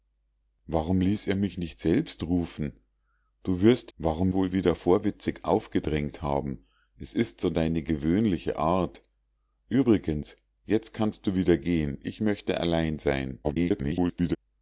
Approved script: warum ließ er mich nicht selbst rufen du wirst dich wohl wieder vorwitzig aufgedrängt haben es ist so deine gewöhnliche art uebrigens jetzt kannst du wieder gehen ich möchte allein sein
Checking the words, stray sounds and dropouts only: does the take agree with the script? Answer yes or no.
no